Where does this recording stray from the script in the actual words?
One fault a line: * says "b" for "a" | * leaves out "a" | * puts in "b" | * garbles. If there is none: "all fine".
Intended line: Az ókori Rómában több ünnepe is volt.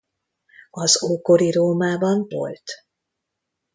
* leaves out "több ünnepe is"